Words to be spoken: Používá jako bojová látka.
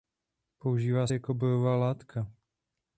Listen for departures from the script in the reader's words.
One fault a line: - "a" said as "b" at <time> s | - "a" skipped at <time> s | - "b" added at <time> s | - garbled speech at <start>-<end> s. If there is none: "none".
none